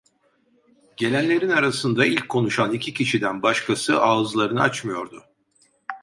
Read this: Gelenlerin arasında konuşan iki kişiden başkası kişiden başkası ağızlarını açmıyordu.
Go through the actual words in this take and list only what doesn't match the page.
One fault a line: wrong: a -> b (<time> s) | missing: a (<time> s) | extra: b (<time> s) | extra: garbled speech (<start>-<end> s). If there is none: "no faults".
extra: ilk (2.0 s)
missing: kişiden başkası (4.0 s)